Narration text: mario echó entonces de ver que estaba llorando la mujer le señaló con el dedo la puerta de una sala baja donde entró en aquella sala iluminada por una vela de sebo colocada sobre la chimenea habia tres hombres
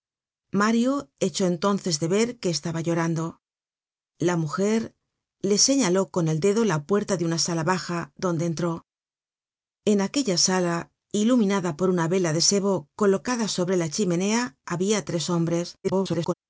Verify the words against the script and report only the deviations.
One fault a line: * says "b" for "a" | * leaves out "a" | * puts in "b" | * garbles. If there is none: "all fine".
* garbles